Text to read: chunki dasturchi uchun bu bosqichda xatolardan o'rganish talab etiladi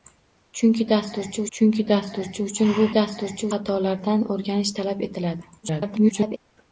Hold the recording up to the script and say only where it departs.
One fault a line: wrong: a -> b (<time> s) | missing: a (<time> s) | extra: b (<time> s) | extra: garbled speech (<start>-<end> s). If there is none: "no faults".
extra: chunki dasturchi (1.6 s)
wrong: bosqichda -> dasturchi (3.0 s)
extra: garbled speech (5.6-6.4 s)